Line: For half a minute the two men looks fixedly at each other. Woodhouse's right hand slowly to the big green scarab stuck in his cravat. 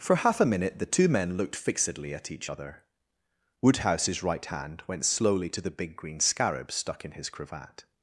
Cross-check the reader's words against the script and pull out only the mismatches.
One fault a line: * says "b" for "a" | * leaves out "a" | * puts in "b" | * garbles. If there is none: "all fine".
* says "looked" for "looks"
* puts in "went"